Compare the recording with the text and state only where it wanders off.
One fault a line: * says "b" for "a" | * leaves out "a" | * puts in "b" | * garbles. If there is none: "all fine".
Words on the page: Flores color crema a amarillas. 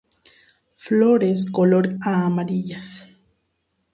* leaves out "crema"